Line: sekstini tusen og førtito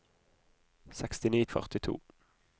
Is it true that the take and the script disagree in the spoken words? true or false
true